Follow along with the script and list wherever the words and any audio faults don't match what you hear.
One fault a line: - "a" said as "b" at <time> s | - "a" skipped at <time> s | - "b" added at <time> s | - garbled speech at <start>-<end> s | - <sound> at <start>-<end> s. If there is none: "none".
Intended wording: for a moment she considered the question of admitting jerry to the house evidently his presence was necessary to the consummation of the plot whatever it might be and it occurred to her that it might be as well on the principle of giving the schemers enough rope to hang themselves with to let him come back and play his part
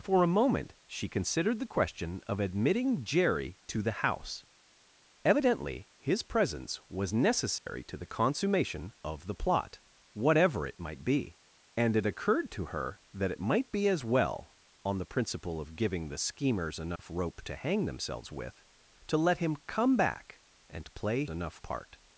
- dropout at 7.6-7.7 s
- dropout at 17.0-17.0 s
- "his" said as "enough" at 21.3 s